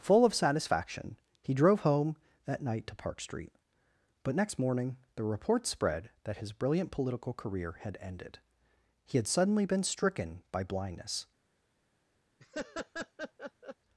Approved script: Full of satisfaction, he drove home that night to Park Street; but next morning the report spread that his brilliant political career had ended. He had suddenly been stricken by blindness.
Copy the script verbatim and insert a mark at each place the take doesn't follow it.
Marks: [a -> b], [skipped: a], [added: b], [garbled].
Full of satisfaction, he drove home that night to Park Street; but next morning the report spread that his brilliant political career had ended. He had suddenly been stricken by blindness.